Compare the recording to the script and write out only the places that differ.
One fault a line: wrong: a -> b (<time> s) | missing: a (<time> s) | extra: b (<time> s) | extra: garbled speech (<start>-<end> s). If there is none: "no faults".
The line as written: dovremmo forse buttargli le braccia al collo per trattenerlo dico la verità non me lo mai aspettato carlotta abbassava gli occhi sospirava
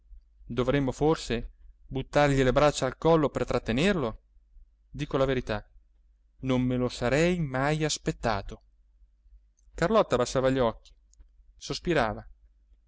extra: sarei (6.9 s)